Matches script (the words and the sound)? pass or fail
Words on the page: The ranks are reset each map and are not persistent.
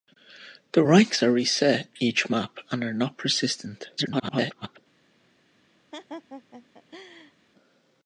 fail